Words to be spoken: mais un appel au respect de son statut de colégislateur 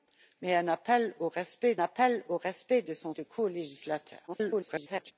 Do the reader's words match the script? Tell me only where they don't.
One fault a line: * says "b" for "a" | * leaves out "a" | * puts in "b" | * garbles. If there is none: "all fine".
* puts in "appel au respect"
* leaves out "statut"
* garbles